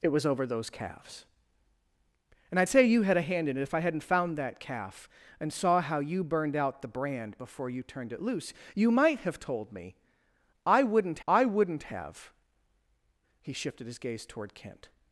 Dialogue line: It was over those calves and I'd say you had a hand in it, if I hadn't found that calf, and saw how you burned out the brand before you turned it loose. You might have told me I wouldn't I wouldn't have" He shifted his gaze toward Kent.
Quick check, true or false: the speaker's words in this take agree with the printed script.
true